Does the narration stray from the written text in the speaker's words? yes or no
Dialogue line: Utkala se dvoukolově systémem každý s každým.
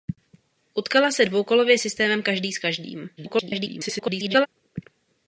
yes